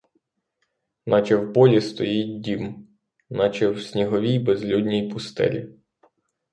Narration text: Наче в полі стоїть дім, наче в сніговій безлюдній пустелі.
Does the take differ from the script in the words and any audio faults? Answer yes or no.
no